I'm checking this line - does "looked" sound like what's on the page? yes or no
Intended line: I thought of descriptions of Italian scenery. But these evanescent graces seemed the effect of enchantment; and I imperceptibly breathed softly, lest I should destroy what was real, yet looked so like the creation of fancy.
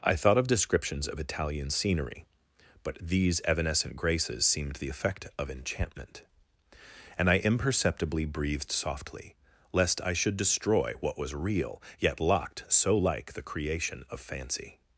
no